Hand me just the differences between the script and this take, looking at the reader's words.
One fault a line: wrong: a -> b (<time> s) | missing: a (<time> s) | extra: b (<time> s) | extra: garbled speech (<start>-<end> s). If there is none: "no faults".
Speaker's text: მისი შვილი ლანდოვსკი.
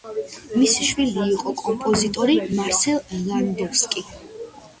extra: იყო კომპოზიტორი მარსელ (1.3 s)